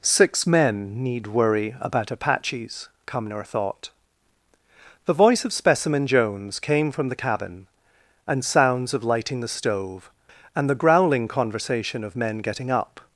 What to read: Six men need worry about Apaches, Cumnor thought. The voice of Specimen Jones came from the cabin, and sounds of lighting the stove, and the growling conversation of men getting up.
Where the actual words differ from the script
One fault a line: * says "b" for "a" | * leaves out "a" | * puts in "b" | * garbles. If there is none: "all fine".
all fine